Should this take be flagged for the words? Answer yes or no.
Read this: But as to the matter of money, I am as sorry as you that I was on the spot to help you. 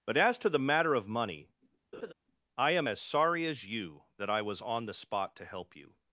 no